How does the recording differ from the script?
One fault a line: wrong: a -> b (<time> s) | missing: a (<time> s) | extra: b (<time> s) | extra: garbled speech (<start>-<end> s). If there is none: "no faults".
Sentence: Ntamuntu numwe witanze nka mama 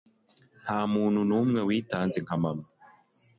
no faults